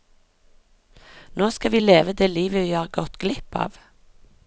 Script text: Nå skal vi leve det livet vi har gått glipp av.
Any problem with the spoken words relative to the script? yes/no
no